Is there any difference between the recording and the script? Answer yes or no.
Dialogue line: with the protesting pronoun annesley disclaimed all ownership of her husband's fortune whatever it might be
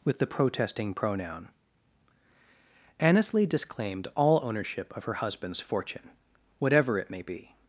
yes